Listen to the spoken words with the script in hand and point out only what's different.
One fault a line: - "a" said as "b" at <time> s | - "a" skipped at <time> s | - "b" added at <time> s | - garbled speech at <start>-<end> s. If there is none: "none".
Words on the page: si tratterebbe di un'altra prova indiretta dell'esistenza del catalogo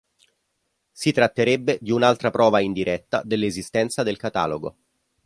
none